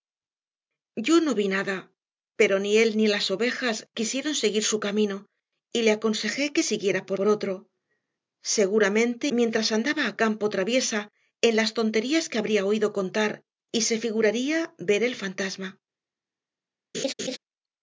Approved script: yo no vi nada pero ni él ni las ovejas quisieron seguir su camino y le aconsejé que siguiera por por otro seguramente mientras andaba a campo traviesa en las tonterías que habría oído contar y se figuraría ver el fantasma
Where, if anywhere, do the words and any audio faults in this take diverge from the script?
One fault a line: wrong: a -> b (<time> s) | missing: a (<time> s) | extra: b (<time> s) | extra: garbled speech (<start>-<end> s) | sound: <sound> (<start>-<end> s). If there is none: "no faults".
sound: laugh (16.9-17.4 s)